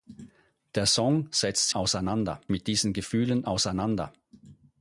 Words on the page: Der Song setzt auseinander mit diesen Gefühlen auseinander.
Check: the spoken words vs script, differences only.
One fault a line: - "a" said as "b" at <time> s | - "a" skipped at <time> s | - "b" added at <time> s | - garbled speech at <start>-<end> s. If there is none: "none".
none